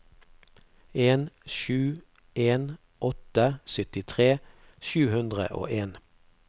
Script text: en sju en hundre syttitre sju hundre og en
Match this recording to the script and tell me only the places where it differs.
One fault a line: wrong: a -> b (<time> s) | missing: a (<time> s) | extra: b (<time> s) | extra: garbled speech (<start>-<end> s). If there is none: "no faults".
wrong: hundre -> åtte (3.1 s)